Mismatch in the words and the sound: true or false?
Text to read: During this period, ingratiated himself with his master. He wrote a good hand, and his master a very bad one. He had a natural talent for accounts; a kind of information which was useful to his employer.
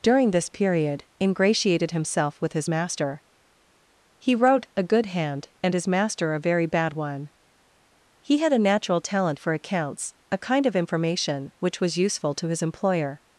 false